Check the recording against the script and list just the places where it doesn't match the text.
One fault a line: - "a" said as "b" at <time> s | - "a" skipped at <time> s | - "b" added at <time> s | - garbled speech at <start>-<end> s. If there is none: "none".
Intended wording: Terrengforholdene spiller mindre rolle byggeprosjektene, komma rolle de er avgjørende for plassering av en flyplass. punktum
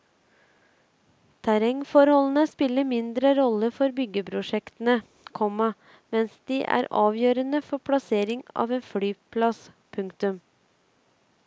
- "for" added at 3.8 s
- "rolle" said as "mens" at 6.2 s